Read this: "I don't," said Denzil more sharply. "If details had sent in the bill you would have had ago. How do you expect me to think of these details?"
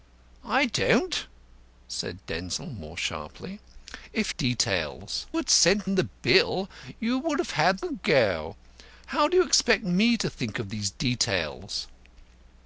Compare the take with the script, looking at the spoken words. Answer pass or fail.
pass